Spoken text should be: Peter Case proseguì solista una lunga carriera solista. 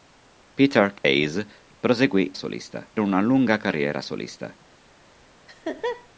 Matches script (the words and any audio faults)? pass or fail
fail